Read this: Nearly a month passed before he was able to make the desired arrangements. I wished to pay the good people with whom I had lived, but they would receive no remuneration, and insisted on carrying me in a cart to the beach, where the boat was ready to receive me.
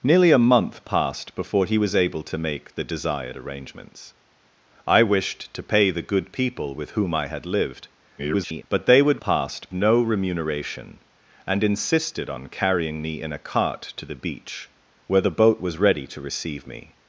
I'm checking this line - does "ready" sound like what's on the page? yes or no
yes